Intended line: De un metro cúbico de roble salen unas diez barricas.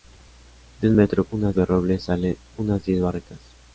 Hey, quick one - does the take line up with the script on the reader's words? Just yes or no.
no